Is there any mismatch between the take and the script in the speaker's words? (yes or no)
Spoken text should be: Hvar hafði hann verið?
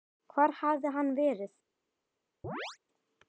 no